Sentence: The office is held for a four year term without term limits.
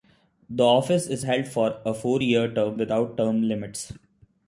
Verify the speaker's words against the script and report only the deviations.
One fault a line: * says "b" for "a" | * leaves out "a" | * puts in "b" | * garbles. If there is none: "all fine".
all fine